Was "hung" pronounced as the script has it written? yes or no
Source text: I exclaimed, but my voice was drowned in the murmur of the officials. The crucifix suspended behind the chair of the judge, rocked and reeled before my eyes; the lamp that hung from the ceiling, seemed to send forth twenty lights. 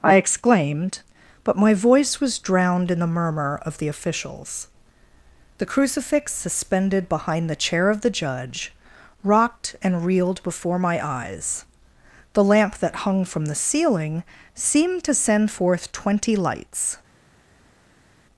yes